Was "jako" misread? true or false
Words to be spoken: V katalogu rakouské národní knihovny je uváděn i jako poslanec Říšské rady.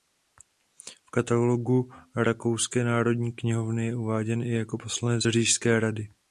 false